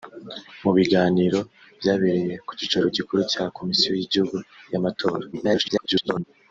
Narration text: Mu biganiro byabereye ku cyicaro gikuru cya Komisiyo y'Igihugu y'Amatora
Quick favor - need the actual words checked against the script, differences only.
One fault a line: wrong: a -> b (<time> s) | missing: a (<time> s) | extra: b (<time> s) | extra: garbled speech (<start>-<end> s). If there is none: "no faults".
extra: garbled speech (5.3-6.2 s)